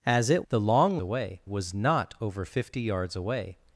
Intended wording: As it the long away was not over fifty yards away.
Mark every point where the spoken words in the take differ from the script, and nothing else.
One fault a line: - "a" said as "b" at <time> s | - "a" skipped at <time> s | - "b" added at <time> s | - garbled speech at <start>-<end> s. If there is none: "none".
none